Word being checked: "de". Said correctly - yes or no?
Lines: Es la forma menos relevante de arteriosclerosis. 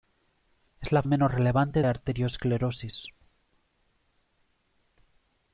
no